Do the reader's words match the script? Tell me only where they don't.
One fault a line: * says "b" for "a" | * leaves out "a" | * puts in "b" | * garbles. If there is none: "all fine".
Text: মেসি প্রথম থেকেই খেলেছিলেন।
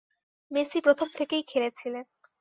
all fine